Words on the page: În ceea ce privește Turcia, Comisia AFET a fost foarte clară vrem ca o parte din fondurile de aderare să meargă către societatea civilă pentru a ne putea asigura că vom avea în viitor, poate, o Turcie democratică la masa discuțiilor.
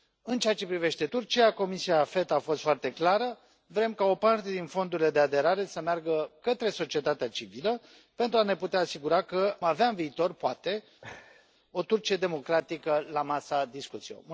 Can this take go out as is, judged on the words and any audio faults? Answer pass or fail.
fail